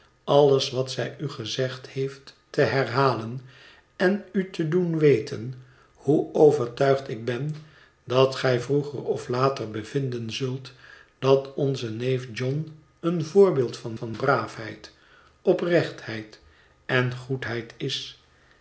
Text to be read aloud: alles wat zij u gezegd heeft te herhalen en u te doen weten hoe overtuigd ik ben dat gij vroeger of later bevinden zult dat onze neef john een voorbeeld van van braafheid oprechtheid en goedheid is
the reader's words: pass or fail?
pass